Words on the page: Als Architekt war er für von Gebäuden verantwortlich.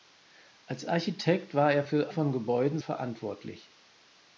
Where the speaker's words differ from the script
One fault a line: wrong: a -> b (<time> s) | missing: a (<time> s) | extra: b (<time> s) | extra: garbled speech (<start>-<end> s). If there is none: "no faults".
no faults